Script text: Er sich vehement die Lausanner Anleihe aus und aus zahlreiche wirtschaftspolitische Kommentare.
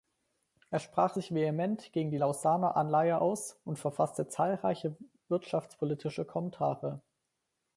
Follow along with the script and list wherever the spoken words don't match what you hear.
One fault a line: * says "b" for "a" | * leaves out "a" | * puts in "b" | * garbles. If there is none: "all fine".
* puts in "sprach"
* puts in "gegen"
* says "verfasste" for "aus"